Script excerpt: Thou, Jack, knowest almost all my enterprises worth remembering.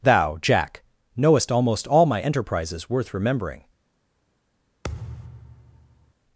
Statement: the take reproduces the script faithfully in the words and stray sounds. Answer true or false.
false